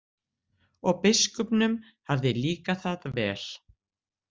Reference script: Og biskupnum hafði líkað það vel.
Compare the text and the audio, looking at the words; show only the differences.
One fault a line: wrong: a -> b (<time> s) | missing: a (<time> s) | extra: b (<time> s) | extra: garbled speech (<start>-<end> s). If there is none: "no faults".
no faults